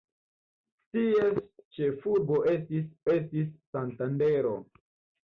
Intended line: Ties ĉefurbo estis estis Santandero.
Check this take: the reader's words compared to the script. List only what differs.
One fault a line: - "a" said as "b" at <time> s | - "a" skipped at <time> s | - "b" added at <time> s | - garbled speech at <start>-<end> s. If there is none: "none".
none